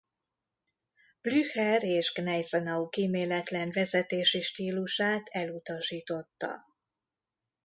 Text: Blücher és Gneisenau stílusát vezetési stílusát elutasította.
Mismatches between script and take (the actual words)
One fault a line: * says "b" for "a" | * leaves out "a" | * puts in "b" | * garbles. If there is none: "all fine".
* says "kíméletlen" for "stílusát"